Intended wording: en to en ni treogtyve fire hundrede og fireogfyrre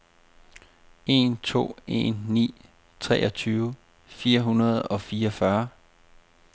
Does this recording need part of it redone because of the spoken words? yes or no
no